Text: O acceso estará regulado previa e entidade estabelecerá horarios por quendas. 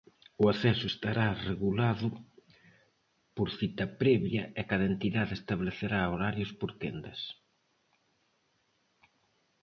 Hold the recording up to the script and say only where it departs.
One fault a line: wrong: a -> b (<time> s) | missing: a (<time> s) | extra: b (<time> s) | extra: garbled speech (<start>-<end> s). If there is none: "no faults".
extra: por cita (3.4 s)
extra: cada (4.7 s)